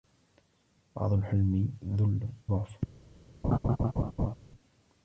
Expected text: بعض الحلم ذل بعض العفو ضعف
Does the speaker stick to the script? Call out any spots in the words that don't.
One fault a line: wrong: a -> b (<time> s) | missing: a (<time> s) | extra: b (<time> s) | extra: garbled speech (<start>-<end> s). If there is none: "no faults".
missing: بعض العفو (2.3 s)